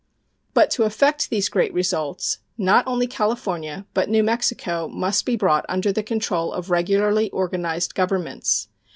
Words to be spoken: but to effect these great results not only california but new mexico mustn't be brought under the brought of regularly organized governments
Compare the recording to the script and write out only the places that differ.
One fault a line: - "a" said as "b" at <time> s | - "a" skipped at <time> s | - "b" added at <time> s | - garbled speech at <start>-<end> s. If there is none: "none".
- "mustn't" said as "must" at 4.9 s
- "brought" said as "control" at 6.0 s